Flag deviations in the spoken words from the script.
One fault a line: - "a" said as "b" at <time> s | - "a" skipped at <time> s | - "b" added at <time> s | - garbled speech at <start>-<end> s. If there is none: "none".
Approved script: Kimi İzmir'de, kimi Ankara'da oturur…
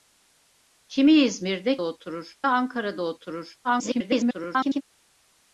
- "kimi" said as "oturur" at 1.8 s
- garbled speech at 3.6-4.8 s